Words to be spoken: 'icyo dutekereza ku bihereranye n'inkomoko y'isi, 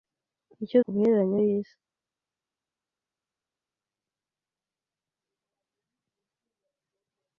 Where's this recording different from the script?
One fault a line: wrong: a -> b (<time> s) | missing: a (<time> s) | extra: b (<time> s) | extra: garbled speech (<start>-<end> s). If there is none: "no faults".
missing: dutekereza (0.8 s)
missing: n'inkomoko (1.4 s)